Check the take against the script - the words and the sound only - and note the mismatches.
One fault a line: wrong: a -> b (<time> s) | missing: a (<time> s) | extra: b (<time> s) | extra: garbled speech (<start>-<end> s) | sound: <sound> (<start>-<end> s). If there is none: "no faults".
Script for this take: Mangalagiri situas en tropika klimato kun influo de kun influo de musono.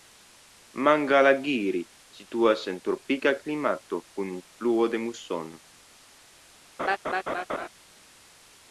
missing: kun influo de (5.1 s)
sound: laugh (6.8-7.7 s)